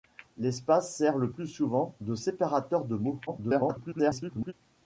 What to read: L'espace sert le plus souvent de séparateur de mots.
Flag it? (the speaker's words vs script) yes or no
yes